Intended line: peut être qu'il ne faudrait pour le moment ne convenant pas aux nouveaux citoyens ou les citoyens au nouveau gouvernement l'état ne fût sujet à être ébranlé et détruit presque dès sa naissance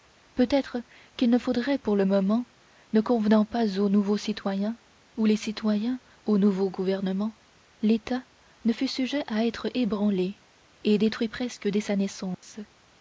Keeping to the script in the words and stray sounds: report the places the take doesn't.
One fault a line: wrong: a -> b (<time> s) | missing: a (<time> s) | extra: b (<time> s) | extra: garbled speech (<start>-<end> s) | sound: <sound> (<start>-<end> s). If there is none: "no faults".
sound: dropout (12.3-12.4 s)